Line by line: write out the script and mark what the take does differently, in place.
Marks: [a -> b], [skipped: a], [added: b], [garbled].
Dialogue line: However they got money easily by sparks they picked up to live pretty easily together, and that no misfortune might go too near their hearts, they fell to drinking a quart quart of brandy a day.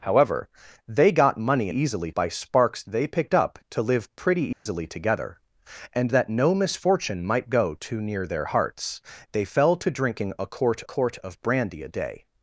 However they got money easily by sparks they picked up to live pretty easily together, and that no misfortune might go too near their hearts, they fell to drinking a quart quart of brandy a day.